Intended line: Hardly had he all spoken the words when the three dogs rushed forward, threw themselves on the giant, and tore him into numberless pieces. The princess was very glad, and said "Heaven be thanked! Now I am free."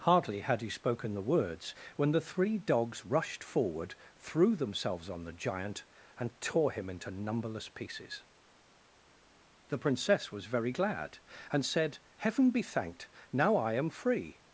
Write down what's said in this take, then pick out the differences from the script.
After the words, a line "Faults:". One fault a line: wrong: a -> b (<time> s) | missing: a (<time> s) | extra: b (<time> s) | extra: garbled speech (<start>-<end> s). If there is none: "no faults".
Hardly had he spoken the words when the three dogs rushed forward, threw themselves on the giant, and tore him into numberless pieces. The princess was very glad, and said "Heaven be thanked! Now I am free."
Faults:
missing: all (0.7 s)